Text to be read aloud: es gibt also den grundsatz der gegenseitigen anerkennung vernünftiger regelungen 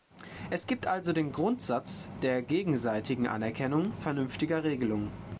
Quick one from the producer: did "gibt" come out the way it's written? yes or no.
yes